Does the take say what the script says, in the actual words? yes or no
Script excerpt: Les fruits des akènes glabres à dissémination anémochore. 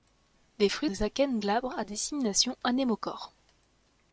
yes